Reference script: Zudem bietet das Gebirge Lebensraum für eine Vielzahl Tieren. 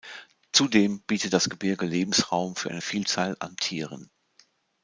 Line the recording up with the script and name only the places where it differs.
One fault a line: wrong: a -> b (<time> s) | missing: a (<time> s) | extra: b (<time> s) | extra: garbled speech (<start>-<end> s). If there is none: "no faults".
extra: an (3.4 s)